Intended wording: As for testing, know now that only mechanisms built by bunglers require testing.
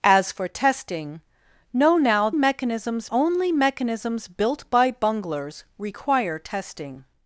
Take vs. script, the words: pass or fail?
fail